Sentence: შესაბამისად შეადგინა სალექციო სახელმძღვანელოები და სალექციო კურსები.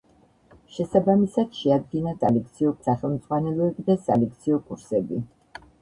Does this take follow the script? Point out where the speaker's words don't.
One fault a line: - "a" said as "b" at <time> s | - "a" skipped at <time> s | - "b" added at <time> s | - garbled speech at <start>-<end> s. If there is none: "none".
none